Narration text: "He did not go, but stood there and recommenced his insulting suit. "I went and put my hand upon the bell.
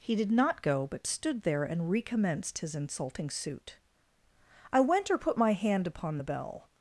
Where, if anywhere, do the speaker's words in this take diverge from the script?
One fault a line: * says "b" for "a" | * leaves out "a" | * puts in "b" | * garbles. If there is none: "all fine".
* says "or" for "and"